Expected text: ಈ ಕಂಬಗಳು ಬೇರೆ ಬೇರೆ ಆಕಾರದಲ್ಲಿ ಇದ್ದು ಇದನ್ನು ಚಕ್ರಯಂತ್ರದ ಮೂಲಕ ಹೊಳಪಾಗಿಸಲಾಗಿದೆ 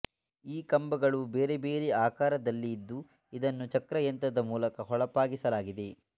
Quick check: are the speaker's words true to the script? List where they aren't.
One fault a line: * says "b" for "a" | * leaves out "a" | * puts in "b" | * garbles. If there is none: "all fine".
all fine